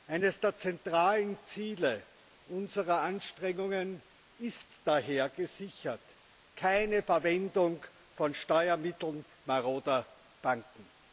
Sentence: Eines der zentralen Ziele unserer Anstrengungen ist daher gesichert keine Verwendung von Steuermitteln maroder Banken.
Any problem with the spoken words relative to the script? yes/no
no